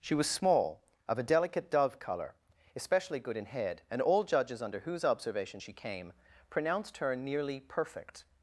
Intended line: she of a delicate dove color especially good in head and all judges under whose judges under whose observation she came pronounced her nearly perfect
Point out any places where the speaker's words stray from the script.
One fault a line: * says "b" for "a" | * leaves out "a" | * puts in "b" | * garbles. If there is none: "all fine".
* puts in "was small"
* leaves out "judges under whose"